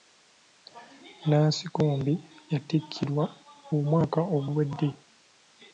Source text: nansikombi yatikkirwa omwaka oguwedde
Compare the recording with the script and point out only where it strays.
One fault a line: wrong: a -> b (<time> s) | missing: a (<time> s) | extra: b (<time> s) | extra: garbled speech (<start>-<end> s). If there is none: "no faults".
no faults